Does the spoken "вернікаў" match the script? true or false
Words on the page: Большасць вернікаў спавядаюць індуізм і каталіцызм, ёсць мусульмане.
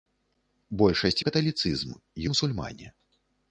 false